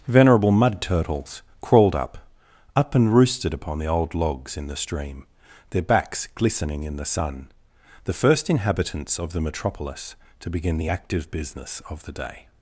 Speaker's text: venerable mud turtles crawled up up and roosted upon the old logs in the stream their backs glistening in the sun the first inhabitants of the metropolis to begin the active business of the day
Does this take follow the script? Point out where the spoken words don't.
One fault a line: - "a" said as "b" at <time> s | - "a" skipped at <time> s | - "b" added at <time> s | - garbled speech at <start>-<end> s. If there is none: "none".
none